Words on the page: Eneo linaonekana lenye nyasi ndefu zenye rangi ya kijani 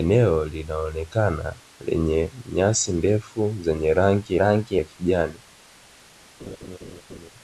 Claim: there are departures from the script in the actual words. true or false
true